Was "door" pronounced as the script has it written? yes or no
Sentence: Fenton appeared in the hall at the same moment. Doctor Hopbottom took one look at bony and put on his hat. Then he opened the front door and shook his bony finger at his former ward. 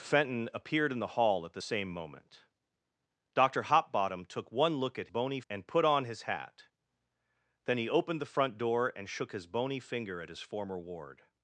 yes